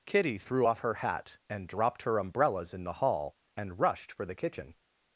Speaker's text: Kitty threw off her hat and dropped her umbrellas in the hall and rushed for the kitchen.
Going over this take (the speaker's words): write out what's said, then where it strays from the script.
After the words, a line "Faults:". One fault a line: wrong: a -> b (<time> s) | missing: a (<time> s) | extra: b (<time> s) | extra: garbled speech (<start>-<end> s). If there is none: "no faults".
Kitty threw off her hat and dropped her umbrellas in the hall and rushed for the kitchen.
Faults:
no faults